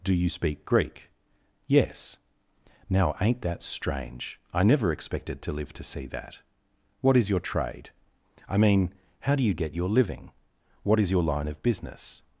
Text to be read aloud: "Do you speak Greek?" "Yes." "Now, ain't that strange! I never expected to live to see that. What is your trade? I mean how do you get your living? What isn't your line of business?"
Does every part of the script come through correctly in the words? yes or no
no